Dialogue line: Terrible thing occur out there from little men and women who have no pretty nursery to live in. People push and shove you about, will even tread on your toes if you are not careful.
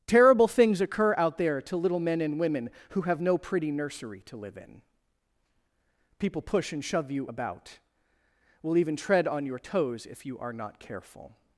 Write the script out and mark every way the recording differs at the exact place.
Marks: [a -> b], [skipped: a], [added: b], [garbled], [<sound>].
Terrible [thing -> things] occur out there [from -> to] little men and women who have no pretty nursery to live in. People push and shove you about, will even tread on your toes if you are not careful.